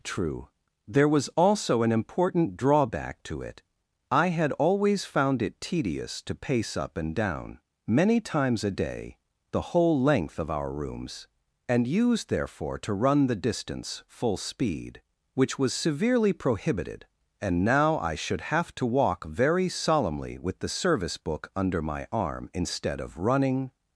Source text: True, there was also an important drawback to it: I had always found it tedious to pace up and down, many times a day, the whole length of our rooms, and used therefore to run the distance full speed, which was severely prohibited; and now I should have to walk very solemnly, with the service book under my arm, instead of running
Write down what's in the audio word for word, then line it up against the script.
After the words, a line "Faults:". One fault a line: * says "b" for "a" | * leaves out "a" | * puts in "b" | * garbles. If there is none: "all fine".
True, there was also an important drawback to it: I had always found it tedious to pace up and down, many times a day, the whole length of our rooms, and used therefore to run the distance full speed, which was severely prohibited; and now I should have to walk very solemnly, with the service book under my arm, instead of running
Faults:
all fine